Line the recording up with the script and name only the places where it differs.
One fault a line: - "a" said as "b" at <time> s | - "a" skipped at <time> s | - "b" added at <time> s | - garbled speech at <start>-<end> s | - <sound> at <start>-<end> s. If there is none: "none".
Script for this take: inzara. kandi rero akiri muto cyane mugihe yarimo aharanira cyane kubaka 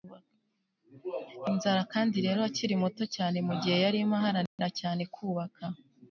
- dropout at 4.5-4.6 s